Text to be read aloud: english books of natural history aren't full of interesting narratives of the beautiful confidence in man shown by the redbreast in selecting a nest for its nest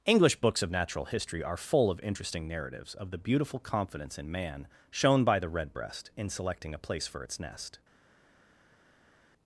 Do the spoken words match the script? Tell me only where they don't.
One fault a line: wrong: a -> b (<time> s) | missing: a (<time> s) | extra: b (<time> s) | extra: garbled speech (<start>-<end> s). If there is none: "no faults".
wrong: aren't -> are (1.4 s)
wrong: nest -> place (6.8 s)